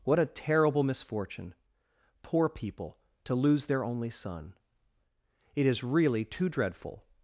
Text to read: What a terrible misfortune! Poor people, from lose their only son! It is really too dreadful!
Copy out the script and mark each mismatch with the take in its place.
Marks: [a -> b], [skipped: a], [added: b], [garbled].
What a terrible misfortune! Poor people, [from -> to] lose their only son! It is really too dreadful!